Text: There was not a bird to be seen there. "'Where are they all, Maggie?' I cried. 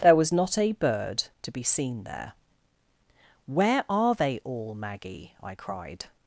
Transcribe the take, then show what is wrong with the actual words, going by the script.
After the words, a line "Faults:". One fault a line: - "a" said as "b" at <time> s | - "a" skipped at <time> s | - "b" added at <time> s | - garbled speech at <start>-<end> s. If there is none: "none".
There was not a bird to be seen there. "'Where are they all, Maggie?' I cried.
Faults:
none